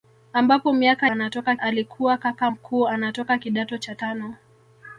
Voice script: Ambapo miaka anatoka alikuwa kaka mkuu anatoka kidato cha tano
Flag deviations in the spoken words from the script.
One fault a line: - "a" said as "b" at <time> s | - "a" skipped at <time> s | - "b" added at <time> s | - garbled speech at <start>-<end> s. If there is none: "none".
none